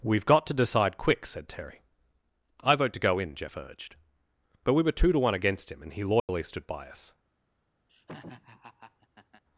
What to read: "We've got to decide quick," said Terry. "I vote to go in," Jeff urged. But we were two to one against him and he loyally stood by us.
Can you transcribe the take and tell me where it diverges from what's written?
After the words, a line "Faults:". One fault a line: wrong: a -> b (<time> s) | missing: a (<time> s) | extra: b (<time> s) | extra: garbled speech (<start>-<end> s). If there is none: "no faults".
"We've got to decide quick," said Terry. "I vote to go in," Jeff urged. But we were two to one against him and he loyally stood by us.
Faults:
no faults